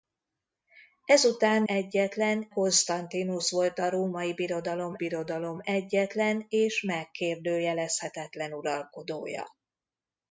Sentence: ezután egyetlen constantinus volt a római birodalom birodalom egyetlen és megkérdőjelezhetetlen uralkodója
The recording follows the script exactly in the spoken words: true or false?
true